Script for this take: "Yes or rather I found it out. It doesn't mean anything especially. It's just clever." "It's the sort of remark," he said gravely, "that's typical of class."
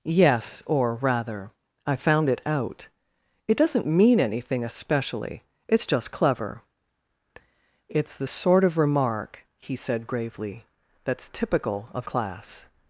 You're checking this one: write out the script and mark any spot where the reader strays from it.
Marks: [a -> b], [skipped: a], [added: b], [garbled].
"Yes or rather I found it out. It doesn't mean anything especially. It's just clever." "It's the sort of remark," he said gravely, "that's typical of class."